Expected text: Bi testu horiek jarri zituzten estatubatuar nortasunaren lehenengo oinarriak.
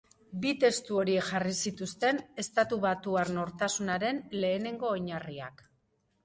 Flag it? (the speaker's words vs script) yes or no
no